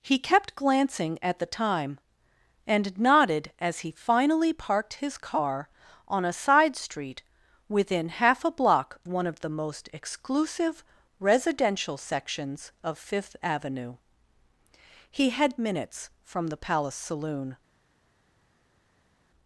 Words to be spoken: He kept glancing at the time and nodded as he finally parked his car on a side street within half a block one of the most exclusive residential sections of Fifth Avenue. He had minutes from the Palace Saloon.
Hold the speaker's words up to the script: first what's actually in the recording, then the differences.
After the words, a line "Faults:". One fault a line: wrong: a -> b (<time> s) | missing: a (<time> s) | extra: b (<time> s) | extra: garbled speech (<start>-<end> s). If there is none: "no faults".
He kept glancing at the time and nodded as he finally parked his car on a side street within half a block one of the most exclusive residential sections of Fifth Avenue. He had minutes from the Palace Saloon.
Faults:
no faults